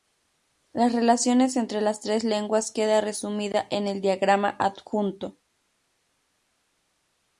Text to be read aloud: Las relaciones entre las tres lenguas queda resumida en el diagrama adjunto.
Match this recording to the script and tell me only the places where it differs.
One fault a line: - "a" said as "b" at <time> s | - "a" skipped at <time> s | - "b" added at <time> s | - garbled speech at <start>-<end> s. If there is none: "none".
none